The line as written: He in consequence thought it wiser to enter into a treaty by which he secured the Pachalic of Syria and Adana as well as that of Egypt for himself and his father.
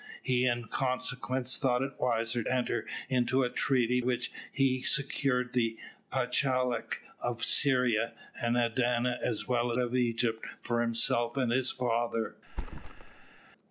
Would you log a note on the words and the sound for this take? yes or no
yes